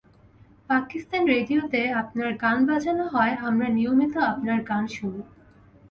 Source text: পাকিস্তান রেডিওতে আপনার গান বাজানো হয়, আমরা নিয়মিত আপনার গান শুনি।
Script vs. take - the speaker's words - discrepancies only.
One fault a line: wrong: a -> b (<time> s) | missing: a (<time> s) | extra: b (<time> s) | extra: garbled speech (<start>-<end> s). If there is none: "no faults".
no faults